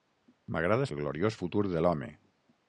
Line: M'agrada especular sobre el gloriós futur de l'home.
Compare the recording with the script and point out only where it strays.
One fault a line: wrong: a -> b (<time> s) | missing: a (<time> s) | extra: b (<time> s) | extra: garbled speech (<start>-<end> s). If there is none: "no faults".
missing: especular sobre (0.9 s)